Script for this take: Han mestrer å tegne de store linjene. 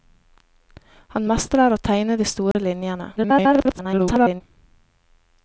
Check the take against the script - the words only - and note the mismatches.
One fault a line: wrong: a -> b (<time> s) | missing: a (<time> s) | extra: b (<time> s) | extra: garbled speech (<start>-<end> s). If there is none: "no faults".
extra: garbled speech (3.2-4.4 s)